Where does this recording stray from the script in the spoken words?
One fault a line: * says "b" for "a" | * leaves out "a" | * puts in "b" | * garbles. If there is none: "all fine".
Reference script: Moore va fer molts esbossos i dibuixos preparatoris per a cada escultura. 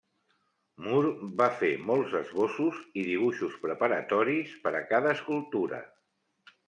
all fine